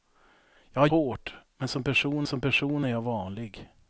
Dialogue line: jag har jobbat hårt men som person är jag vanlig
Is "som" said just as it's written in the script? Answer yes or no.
yes